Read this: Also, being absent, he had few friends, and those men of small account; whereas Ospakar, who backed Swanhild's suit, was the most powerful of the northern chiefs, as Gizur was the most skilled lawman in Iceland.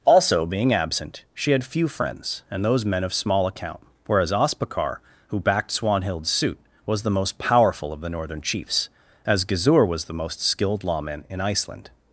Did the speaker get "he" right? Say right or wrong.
wrong